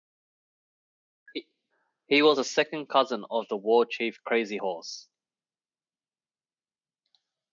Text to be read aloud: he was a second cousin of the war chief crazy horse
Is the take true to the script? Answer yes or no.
yes